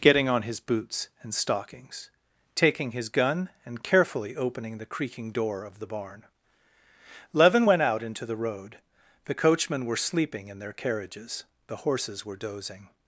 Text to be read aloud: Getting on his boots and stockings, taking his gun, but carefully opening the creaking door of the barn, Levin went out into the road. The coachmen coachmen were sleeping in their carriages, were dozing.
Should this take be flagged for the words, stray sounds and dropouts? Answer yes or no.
yes